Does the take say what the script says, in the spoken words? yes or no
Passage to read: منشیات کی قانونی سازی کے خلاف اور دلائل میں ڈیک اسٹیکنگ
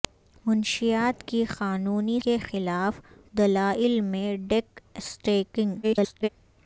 no